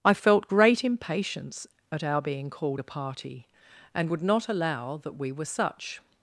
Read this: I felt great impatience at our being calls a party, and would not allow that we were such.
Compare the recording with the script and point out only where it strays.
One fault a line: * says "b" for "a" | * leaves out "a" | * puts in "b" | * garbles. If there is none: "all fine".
* says "called" for "calls"